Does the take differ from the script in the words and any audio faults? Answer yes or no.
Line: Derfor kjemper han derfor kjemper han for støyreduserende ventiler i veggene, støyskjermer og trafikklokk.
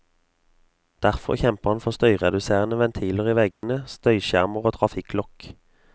yes